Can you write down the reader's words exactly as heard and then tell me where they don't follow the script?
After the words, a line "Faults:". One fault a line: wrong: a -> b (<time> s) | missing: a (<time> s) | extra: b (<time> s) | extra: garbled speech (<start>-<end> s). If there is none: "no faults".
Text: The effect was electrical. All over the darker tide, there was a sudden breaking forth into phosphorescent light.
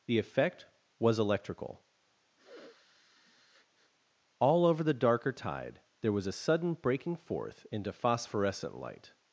The effect was electrical. All over the darker tide, there was a sudden breaking forth into phosphorescent light.
Faults:
no faults